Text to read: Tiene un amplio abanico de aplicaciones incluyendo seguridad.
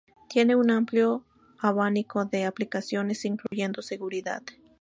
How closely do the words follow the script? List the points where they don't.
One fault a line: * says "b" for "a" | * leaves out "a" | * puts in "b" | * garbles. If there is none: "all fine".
all fine